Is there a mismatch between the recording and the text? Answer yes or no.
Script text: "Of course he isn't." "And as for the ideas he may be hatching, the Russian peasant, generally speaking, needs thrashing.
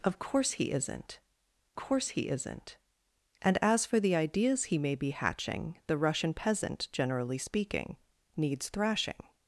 yes